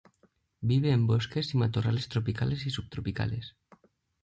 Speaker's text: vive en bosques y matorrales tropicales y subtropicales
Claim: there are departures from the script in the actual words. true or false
false